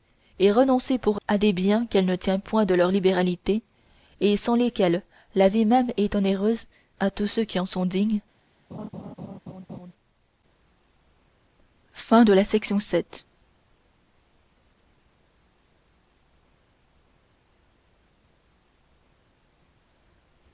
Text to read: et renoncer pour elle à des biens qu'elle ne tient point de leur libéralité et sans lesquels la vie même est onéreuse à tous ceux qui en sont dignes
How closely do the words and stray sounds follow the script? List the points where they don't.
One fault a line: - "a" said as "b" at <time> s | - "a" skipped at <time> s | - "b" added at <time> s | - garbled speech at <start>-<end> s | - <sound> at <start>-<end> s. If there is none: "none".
- "elle" skipped at 1.2 s
- laugh at 8.7-9.9 s